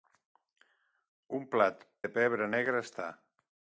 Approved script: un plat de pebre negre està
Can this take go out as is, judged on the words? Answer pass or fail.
pass